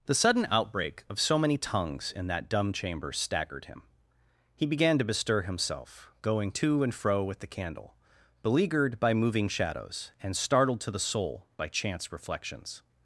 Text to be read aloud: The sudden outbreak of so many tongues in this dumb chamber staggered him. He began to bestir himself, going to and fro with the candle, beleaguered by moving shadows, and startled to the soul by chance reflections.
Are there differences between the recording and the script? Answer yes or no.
yes